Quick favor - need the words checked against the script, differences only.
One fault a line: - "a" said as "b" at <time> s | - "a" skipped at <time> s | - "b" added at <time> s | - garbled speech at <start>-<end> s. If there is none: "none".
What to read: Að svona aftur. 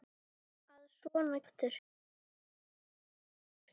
none